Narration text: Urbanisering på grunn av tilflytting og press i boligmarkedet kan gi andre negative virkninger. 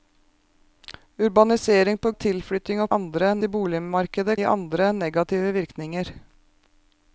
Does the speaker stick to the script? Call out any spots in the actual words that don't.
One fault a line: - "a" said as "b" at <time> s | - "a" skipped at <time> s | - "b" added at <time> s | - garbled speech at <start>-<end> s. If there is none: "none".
- "grunn" skipped at 2.1 s
- "press" said as "andre" at 3.0 s
- "kan" skipped at 4.4 s